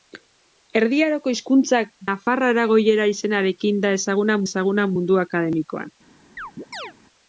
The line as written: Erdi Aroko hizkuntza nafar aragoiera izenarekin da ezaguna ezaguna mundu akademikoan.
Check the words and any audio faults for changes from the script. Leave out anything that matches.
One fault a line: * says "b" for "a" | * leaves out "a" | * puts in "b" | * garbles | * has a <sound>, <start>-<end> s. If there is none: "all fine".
* has a chirp, 6.4-6.9 s